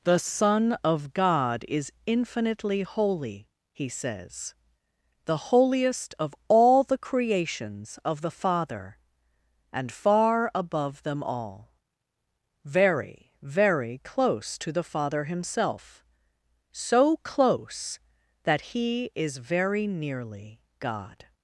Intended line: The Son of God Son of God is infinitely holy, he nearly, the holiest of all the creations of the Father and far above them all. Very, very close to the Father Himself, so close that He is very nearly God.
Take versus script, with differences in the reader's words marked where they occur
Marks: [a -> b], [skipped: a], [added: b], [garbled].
The Son of God [skipped: Son of God] is infinitely holy, he [nearly, -> says] the holiest of all the creations of the Father and far above them all. Very, very close to the Father Himself, so close that He is very nearly God.